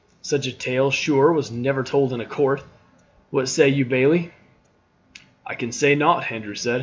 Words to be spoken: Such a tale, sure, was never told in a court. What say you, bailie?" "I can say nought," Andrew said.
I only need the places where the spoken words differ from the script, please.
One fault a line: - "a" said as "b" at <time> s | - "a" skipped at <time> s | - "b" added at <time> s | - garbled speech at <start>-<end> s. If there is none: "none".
none